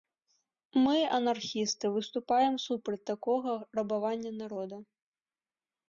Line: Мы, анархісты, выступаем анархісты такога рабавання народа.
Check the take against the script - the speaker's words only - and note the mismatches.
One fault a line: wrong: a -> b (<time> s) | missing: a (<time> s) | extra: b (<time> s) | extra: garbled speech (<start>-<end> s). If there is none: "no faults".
wrong: анархісты -> супраць (2.6 s)